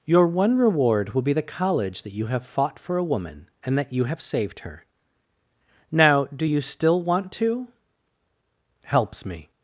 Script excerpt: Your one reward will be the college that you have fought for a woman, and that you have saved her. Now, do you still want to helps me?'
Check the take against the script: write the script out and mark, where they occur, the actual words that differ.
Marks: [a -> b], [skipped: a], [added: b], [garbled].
Your one reward will be the college that you have fought for a woman, and that you have saved her. Now, do you still want to helps me?'